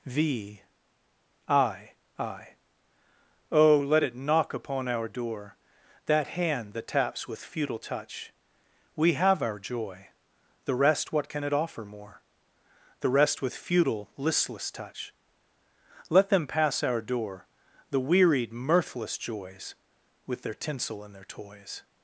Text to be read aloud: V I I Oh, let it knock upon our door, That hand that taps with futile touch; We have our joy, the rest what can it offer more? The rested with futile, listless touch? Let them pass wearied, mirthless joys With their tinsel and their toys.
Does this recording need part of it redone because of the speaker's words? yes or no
yes